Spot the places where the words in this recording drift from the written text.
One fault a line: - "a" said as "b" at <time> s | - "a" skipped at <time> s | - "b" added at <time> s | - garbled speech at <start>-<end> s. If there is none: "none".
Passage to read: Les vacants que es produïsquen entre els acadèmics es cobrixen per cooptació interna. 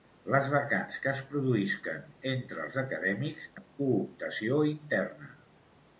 - "es cobrixen per" skipped at 3.5 s